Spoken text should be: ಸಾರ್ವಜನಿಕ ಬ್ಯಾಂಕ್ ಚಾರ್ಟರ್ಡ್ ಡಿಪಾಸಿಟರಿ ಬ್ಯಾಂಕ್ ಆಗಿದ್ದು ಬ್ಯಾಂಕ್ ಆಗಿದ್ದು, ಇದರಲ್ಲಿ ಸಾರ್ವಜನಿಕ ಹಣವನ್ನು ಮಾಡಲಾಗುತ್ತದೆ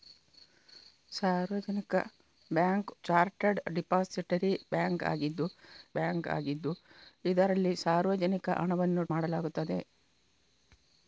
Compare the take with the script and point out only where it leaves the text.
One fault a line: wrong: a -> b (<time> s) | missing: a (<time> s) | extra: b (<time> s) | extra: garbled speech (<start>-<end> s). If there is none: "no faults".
no faults